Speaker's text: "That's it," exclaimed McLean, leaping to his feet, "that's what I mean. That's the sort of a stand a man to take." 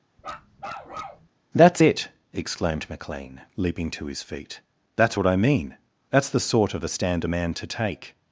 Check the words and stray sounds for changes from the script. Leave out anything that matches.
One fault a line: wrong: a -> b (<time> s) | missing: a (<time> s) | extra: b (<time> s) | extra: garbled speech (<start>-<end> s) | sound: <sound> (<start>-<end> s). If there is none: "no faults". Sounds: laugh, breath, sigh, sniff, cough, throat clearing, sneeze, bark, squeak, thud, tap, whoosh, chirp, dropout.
sound: bark (0.2-1.3 s)